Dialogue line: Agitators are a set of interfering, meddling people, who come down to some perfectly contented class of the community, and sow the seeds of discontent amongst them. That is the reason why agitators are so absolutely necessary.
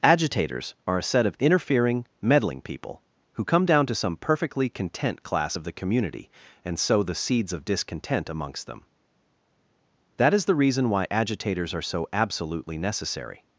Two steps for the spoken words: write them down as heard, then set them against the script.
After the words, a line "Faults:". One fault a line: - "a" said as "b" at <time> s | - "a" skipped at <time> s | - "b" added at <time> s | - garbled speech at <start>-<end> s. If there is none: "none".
Agitators are a set of interfering, meddling people, who come down to some perfectly content class of the community, and sow the seeds of discontent amongst them. That is the reason why agitators are so absolutely necessary.
Faults:
- "contented" said as "content" at 4.7 s